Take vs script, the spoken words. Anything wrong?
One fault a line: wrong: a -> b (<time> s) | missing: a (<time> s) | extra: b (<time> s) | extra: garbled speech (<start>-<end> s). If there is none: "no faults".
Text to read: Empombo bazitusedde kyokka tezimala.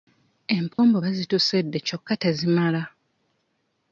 no faults